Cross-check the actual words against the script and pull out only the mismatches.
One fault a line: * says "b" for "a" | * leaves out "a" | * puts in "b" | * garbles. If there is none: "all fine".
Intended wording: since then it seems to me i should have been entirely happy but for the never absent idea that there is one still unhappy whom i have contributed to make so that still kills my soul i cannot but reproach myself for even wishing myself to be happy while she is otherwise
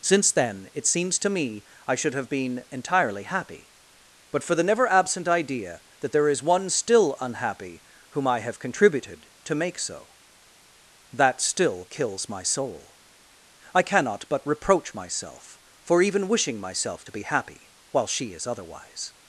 all fine